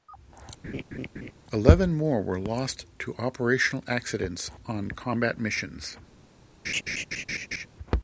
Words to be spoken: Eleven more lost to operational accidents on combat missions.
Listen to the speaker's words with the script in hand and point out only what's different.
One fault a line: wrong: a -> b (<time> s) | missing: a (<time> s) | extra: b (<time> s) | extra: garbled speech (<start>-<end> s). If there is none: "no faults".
extra: were (2.2 s)